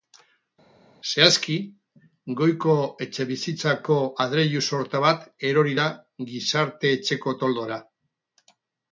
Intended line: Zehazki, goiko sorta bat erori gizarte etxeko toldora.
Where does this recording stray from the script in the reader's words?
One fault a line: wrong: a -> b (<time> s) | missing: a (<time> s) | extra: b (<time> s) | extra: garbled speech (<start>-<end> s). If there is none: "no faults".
extra: etxebizitzako adreilu (3.1 s)
extra: da (5.8 s)